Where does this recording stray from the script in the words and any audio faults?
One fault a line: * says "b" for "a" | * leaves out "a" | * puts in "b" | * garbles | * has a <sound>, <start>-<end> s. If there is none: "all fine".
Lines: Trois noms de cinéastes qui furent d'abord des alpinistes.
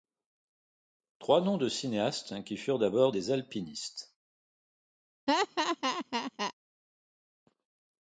* has a laugh, 5.3-6.5 s